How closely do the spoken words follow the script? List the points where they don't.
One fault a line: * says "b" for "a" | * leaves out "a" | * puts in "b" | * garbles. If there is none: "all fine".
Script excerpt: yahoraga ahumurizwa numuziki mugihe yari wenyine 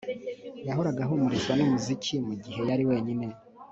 all fine